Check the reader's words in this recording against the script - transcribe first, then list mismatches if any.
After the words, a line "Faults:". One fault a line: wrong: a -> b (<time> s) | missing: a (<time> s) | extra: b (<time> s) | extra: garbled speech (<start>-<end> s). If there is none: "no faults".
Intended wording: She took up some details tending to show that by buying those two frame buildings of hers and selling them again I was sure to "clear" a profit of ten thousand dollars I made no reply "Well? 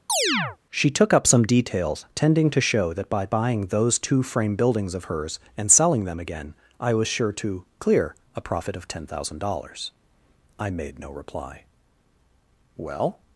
She took up some details tending to show that by buying those two frame buildings of hers and selling them again I was sure to "clear" a profit of ten thousand dollars I made no reply "Well?
Faults:
no faults